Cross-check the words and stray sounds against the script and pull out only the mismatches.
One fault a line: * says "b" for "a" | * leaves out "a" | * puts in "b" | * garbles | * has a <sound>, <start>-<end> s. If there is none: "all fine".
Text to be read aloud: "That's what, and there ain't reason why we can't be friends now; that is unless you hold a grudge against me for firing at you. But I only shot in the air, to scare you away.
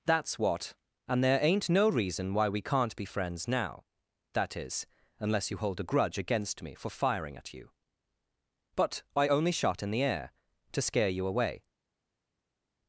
* puts in "no"